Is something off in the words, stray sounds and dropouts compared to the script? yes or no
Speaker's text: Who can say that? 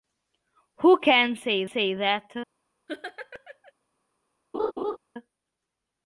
yes